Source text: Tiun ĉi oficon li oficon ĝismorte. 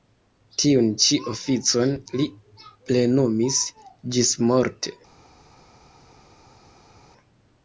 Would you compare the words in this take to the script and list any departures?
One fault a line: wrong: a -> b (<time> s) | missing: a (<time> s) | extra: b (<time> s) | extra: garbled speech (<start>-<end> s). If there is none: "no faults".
wrong: oficon -> plenumis (2.9 s)